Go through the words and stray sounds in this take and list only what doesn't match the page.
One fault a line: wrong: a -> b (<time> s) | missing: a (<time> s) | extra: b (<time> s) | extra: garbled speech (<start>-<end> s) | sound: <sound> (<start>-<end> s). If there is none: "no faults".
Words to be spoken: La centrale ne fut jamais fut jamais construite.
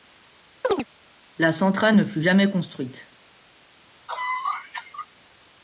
sound: chirp (0.6-0.9 s)
missing: fut jamais (2.5 s)
sound: cough (4.1-5.1 s)